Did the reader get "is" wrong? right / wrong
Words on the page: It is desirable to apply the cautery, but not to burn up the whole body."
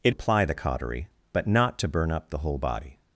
wrong